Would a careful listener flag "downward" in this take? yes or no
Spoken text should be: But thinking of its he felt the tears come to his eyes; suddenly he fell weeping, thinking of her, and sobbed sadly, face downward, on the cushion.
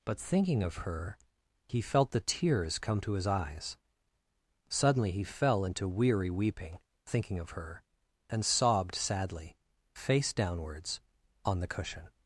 yes